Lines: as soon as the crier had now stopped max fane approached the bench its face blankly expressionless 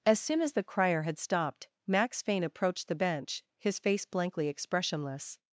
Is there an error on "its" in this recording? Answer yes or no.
yes